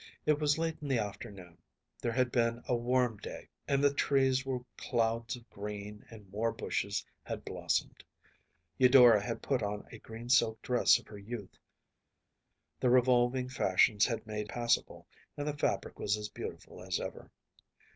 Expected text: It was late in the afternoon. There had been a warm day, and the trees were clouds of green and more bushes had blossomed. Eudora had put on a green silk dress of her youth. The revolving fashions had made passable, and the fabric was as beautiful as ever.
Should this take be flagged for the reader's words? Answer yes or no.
no